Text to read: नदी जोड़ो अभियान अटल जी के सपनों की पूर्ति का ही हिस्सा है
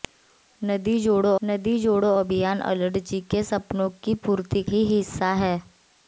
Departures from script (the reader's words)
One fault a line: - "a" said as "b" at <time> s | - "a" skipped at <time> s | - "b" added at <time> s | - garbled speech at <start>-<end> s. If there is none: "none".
- "नदी जोड़ो" added at 1.4 s
- "का" skipped at 4.6 s